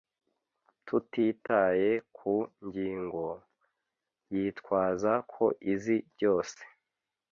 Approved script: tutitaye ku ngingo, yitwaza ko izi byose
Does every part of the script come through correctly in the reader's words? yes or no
yes